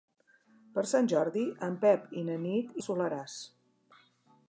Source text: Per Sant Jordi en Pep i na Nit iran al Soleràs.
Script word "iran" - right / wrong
wrong